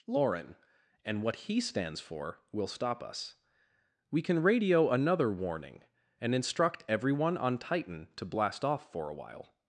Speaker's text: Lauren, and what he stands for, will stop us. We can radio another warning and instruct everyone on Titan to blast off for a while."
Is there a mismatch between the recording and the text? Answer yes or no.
no